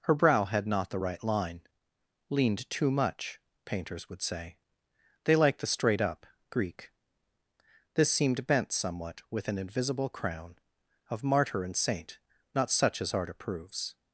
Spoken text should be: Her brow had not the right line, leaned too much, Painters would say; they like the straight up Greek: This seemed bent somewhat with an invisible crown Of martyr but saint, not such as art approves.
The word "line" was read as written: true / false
true